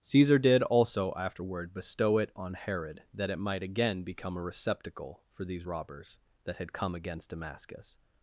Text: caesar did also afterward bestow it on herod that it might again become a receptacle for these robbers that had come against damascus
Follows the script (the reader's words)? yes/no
yes